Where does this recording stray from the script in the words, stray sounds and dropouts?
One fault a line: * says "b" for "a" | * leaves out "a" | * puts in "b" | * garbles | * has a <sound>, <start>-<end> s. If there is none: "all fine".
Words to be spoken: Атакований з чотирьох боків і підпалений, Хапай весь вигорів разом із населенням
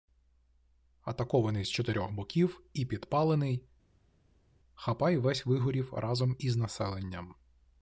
all fine